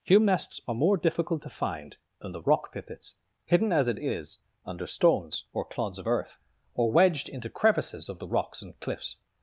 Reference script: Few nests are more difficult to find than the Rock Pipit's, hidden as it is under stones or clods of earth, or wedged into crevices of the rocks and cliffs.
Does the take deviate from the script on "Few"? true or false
true